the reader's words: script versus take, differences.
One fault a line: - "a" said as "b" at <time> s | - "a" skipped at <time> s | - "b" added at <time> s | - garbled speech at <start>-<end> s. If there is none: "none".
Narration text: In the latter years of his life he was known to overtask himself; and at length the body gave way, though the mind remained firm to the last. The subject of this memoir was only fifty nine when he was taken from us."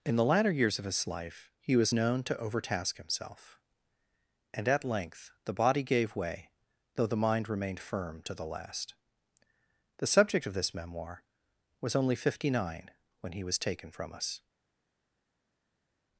none